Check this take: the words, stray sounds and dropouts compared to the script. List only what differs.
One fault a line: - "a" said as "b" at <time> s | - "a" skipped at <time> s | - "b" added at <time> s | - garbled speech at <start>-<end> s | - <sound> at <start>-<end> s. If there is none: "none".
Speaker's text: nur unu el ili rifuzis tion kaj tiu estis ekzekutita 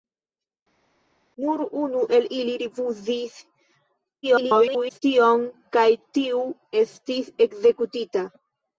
- garbled speech at 4.2-5.0 s